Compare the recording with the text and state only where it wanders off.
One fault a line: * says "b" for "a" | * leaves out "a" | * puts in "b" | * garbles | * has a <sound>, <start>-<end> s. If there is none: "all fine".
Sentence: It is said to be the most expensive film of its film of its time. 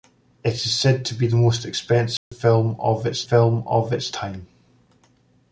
* has a dropout, 2.2-2.3 s